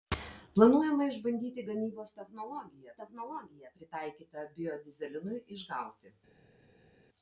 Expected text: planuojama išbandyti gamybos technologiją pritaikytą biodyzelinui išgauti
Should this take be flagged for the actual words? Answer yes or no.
yes